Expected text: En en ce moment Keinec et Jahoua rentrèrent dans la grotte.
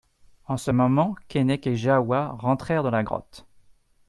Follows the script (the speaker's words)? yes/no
no